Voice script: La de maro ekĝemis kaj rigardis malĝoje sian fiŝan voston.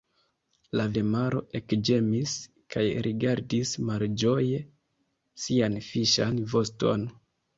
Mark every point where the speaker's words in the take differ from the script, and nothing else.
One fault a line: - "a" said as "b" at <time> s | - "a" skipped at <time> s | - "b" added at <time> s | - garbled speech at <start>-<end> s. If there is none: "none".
none